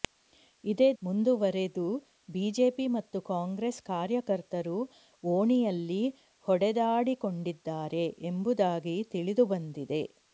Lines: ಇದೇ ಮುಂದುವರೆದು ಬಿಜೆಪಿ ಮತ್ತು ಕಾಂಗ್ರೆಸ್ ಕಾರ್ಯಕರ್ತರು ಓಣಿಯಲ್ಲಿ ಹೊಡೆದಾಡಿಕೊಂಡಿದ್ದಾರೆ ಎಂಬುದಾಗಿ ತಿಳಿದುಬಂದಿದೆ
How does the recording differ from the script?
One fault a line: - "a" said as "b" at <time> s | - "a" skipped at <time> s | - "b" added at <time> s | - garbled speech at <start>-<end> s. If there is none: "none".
none